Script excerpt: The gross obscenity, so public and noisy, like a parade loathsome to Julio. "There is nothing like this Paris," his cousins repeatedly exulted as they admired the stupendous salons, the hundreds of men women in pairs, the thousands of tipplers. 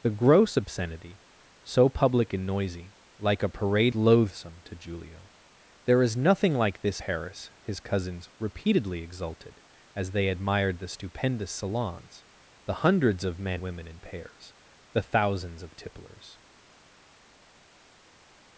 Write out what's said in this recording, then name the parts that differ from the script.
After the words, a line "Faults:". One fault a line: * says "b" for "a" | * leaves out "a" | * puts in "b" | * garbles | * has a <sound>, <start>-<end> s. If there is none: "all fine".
The gross obscenity, so public and noisy, like a parade loathsome to Julio. "There is nothing like this Paris," his cousins repeatedly exulted as they admired the stupendous salons, the hundreds of men women in pairs, the thousands of tipplers.
Faults:
all fine